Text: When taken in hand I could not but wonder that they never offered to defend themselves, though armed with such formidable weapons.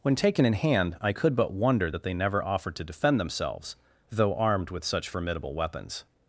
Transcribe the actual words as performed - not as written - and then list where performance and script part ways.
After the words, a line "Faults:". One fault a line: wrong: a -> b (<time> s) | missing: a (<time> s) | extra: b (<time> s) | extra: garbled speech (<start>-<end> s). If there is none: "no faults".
When taken in hand I could but wonder that they never offered to defend themselves, though armed with such formidable weapons.
Faults:
missing: not (1.3 s)